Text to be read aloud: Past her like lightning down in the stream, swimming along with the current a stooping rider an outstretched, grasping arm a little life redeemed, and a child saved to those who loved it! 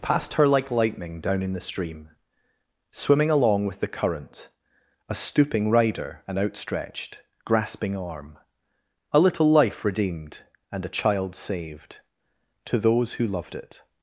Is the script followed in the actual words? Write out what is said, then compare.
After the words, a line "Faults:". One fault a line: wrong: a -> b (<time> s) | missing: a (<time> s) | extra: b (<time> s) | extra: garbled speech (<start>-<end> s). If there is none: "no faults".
Past her like lightning down in the stream, swimming along with the current a stooping rider an outstretched, grasping arm a little life redeemed, and a child saved to those who loved it!
Faults:
no faults